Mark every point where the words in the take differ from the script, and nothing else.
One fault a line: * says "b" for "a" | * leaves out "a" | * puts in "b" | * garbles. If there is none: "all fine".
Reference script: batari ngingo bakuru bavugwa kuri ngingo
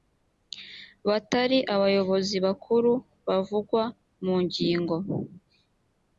* says "abayobozi" for "ngingo"
* says "mu" for "kuri"